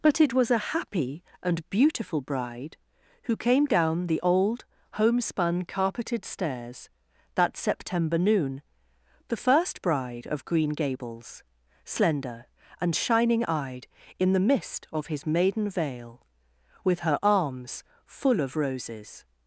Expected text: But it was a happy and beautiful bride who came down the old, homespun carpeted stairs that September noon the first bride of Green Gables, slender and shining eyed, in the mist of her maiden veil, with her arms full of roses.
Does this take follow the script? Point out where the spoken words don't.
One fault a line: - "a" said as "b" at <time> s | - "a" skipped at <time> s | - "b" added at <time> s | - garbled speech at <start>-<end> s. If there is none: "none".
- "her" said as "his" at 15.1 s